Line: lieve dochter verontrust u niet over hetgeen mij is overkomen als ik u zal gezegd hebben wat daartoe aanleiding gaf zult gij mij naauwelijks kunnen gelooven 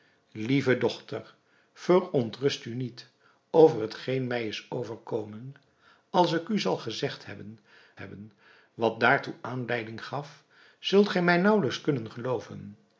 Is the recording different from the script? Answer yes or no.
yes